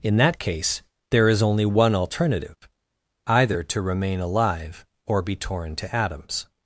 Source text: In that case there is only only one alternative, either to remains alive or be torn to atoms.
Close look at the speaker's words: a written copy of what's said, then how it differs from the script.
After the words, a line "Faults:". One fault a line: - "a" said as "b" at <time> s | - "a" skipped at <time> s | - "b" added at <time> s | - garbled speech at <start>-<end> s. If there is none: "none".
In that case there is only one alternative, either to remain alive or be torn to atoms.
Faults:
- "only" skipped at 1.6 s
- "remains" said as "remain" at 3.8 s